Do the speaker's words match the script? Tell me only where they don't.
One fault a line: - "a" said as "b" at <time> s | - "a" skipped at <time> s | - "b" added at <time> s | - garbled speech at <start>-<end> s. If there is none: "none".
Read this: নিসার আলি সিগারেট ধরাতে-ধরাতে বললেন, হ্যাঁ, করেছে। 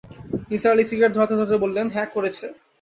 none